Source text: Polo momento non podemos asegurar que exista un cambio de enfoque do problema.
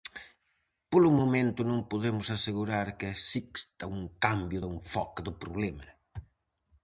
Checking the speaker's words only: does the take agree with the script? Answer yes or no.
yes